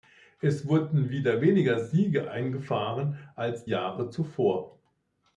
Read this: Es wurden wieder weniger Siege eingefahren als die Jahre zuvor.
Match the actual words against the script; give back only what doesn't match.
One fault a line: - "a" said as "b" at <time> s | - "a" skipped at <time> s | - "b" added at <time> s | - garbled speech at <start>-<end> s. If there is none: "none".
- "die" skipped at 3.7 s